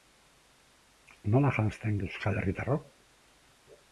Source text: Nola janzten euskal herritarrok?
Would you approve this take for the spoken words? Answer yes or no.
yes